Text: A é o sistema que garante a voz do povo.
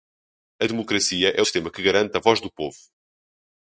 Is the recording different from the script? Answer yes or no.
yes